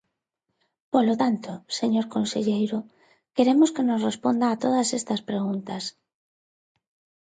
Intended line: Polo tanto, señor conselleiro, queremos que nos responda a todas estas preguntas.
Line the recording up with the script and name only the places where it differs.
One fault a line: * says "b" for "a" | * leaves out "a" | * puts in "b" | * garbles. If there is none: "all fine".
all fine